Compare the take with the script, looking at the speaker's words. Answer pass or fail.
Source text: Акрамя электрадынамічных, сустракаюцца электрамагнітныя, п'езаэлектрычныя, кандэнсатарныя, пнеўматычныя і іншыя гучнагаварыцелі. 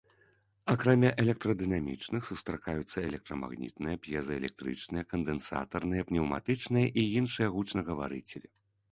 pass